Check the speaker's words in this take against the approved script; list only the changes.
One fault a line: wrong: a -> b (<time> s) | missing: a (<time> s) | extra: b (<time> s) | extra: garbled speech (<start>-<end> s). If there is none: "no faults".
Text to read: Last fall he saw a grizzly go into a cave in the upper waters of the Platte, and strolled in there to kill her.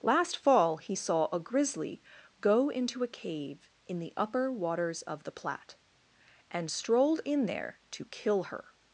no faults